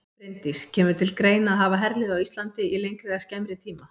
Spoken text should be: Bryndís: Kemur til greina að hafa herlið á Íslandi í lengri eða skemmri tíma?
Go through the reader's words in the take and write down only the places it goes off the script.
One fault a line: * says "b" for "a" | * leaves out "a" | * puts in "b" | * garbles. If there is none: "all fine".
all fine